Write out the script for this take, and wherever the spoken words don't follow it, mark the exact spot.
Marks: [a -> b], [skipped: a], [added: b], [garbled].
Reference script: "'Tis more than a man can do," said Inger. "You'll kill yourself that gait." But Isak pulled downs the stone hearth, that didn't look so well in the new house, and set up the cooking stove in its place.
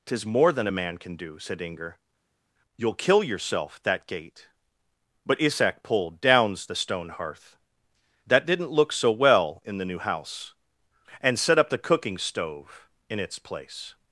"'Tis more than a man can do," said Inger. "You'll kill yourself that gait." But Isak pulled downs the stone hearth, that didn't look so well in the new house, and set up the cooking stove in its place.